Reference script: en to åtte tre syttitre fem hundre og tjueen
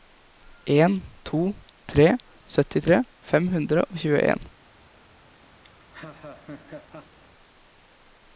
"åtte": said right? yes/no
no